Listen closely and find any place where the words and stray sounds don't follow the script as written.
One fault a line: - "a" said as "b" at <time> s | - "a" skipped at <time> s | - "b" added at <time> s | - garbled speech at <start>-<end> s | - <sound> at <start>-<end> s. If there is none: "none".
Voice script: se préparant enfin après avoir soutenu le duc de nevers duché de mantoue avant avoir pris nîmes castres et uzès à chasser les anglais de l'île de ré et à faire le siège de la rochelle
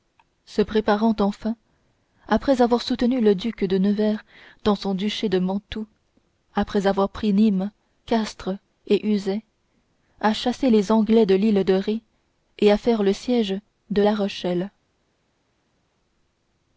- "dans son" added at 4.6 s
- "avant" said as "après" at 6.5 s